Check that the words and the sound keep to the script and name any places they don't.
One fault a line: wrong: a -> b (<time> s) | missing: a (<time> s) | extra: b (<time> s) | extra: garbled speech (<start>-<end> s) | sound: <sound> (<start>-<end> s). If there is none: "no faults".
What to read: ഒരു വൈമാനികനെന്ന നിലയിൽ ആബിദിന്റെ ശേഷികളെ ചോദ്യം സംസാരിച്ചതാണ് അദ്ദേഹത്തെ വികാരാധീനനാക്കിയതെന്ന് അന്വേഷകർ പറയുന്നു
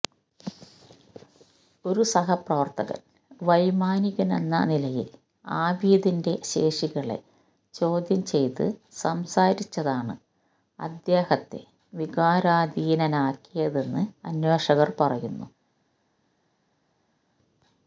extra: സഹപ്രവർത്തകൻ (2.0 s)
extra: ചെയ്ത് (8.2 s)